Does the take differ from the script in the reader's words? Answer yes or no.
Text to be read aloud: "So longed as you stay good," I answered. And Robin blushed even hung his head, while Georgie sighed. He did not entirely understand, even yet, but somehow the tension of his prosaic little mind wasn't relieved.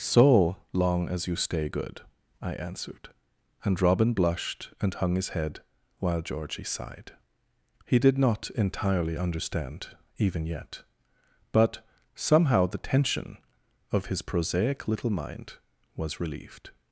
yes